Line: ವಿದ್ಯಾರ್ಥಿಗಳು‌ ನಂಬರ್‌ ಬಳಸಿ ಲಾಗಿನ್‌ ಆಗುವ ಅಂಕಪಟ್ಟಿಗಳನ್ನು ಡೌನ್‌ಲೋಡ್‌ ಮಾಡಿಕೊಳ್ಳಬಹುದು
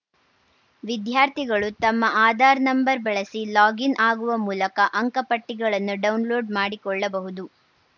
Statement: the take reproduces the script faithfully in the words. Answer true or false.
false